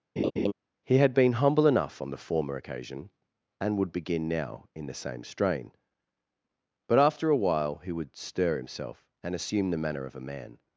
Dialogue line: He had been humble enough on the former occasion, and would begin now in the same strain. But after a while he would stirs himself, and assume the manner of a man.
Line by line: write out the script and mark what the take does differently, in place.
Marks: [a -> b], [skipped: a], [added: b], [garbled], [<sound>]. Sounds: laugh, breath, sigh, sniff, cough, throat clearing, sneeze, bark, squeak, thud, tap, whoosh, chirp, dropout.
[laugh] He had been humble enough on the former occasion, and would begin now in the same strain. But after a while he would [stirs -> stir] himself, and assume the manner of a man.